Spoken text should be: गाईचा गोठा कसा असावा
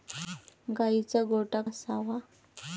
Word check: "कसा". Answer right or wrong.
wrong